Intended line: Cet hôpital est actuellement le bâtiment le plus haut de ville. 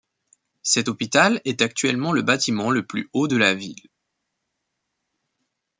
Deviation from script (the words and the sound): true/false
true